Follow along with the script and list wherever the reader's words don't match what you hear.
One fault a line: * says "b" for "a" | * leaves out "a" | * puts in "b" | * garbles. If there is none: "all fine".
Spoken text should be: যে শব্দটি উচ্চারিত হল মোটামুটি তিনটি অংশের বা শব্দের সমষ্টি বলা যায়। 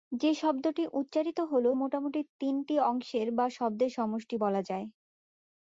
all fine